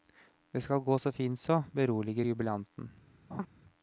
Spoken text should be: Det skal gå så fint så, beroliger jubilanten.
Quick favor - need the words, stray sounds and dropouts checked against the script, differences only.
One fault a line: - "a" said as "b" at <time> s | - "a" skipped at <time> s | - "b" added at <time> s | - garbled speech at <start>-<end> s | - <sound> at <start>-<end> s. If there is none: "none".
- laugh at 3.3-3.5 s